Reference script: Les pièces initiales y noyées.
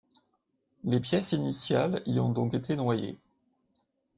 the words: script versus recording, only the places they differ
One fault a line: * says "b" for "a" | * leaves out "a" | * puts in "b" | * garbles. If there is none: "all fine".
* puts in "ont donc été"